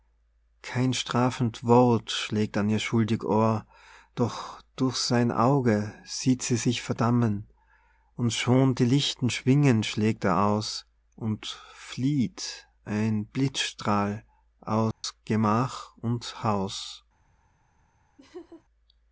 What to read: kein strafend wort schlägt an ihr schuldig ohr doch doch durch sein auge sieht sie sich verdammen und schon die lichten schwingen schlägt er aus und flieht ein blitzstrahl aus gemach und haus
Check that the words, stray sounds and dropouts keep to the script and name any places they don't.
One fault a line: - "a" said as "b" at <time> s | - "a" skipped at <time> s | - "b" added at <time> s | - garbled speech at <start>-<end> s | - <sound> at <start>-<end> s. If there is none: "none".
- "doch" skipped at 4.6 s
- dropout at 14.9-15.0 s
- laugh at 18.2-18.6 s